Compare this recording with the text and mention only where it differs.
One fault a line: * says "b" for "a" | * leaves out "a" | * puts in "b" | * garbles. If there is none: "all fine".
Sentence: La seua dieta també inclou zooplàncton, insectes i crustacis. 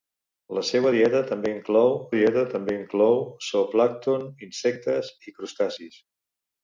* puts in "dieta també inclou"